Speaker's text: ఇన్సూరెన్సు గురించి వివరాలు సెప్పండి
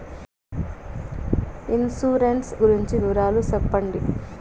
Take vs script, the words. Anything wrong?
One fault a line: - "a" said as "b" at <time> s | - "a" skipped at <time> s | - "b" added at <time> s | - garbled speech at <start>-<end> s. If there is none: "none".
none